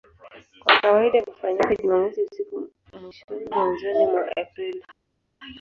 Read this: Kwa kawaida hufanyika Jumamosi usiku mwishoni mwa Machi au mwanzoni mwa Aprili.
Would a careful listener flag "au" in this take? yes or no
yes